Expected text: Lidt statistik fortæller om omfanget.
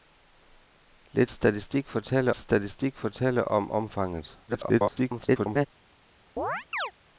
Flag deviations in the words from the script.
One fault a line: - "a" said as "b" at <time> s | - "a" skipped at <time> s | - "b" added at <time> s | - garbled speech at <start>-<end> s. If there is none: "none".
- "statistik fortæller" added at 2.4 s
- garbled speech at 4.5-5.7 s